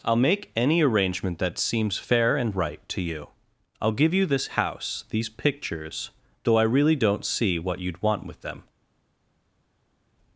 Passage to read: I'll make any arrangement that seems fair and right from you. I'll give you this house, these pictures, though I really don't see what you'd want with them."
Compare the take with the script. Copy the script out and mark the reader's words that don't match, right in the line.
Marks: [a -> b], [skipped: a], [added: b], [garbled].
I'll make any arrangement that seems fair and right [from -> to] you. I'll give you this house, these pictures, though I really don't see what you'd want with them."